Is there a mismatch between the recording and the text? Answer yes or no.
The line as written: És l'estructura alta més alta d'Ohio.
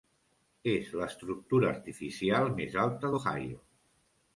yes